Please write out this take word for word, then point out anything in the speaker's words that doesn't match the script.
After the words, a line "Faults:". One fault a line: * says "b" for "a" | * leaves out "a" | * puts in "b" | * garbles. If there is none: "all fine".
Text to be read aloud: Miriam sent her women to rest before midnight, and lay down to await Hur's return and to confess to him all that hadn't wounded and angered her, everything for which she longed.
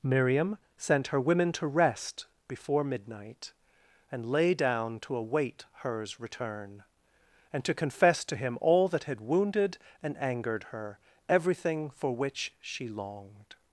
Miriam sent her women to rest before midnight, and lay down to await Hur's return and to confess to him all that had wounded and angered her, everything for which she longed.
Faults:
* says "had" for "hadn't"